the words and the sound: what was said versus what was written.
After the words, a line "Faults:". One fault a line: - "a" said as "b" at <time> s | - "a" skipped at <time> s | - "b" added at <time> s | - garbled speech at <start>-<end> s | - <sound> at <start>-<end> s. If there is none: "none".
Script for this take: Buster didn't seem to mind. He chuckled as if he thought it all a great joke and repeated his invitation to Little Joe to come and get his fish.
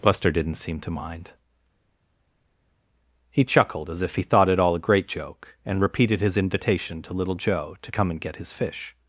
Buster didn't seem to mind. He chuckled as if he thought it all a great joke and repeated his invitation to Little Joe to come and get his fish.
Faults:
none